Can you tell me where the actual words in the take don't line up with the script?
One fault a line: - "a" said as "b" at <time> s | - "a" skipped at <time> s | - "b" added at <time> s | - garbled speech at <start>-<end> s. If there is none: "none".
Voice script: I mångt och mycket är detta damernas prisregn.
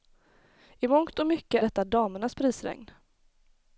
- "är" skipped at 1.6 s